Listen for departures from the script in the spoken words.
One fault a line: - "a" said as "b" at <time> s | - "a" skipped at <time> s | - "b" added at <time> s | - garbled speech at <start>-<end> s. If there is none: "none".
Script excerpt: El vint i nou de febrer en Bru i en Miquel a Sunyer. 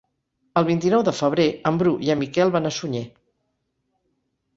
- "van" added at 2.6 s